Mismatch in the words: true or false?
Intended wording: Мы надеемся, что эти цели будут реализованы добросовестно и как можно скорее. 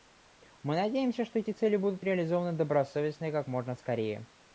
false